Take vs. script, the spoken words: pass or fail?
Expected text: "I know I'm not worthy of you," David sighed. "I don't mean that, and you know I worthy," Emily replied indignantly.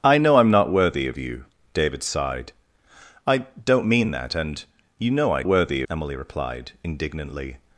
pass